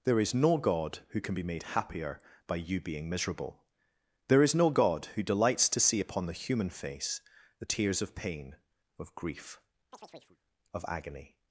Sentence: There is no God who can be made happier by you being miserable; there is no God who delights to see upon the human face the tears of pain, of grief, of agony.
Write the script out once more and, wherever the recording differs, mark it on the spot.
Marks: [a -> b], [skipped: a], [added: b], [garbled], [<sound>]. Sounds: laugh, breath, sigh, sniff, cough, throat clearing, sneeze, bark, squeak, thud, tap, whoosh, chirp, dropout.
There is no God who can be made happier by you being miserable; there is no God who delights to see upon the human face the tears of pain, of grief, [chirp] of agony.